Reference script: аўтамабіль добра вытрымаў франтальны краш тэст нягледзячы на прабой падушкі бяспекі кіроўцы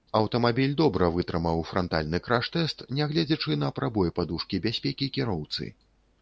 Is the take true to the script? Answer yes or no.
yes